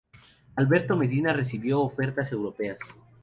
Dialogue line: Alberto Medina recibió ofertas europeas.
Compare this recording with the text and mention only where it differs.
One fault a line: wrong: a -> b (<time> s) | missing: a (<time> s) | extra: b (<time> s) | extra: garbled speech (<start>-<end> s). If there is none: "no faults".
no faults